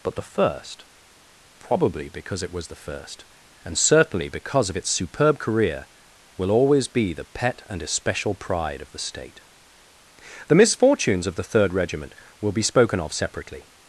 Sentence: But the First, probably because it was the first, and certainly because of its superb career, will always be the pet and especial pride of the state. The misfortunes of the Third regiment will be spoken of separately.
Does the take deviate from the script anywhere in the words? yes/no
no